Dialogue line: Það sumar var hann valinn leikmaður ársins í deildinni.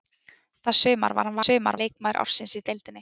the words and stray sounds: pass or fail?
fail